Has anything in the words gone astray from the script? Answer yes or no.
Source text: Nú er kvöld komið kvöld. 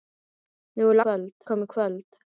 no